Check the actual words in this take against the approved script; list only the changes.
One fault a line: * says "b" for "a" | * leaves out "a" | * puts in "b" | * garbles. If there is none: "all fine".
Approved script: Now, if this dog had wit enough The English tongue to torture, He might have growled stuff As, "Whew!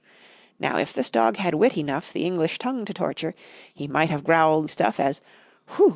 all fine